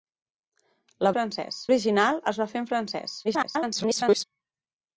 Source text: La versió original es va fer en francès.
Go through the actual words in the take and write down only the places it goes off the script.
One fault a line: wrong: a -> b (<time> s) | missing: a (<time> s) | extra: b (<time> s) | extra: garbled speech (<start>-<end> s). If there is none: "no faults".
wrong: versió -> francès (1.2 s)
extra: garbled speech (3.2-4.2 s)